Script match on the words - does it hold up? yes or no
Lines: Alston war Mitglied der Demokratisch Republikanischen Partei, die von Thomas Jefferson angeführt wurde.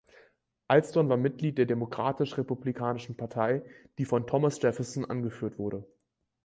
yes